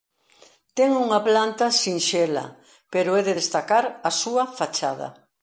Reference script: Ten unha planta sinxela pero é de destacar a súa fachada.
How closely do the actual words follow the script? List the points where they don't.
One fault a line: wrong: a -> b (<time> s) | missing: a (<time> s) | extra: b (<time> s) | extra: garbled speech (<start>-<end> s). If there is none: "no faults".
no faults